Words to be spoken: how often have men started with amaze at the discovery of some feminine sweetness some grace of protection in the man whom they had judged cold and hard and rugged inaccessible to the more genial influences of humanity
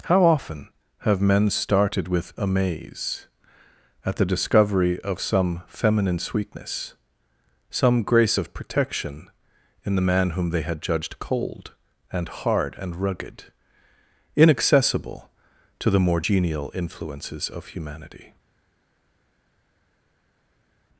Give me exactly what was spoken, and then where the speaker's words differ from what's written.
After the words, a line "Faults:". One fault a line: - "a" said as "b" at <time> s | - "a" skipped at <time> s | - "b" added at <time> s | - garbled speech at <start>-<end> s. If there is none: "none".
how often have men started with amaze at the discovery of some feminine sweetness some grace of protection in the man whom they had judged cold and hard and rugged inaccessible to the more genial influences of humanity
Faults:
none